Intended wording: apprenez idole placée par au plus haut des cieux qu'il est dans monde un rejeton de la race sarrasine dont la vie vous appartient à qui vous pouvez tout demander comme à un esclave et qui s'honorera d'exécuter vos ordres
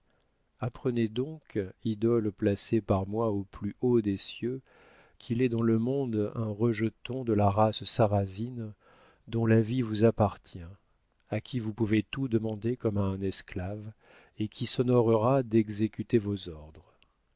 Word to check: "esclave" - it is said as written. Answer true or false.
true